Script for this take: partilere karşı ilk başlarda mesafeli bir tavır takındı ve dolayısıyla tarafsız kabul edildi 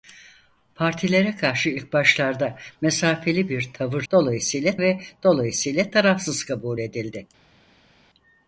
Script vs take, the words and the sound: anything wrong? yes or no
yes